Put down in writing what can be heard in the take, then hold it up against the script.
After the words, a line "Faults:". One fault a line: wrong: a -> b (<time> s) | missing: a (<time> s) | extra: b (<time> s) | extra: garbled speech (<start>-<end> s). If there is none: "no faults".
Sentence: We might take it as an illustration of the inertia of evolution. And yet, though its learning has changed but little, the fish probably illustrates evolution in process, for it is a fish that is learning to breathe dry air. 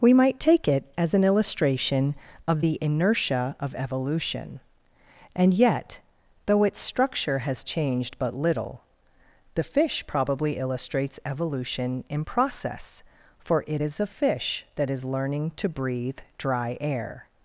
We might take it as an illustration of the inertia of evolution. And yet, though its structure has changed but little, the fish probably illustrates evolution in process, for it is a fish that is learning to breathe dry air.
Faults:
wrong: learning -> structure (6.8 s)